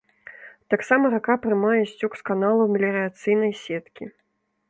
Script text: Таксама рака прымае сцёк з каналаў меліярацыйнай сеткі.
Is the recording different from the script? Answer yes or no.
no